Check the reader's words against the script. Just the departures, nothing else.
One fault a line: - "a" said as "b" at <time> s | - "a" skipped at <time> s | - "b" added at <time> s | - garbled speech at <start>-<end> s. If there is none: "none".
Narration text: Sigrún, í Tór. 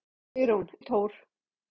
none